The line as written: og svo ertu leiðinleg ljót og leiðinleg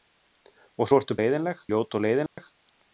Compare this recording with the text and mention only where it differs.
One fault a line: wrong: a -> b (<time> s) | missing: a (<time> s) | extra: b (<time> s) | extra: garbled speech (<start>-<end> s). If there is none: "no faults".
no faults